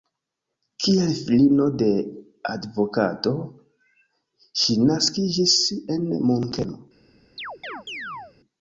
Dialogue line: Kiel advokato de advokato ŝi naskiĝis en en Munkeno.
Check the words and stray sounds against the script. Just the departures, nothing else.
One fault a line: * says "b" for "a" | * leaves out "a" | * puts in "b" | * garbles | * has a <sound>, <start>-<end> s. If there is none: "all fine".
* says "filino" for "advokato"
* leaves out "en"
* has a chirp, 7.4-8.3 s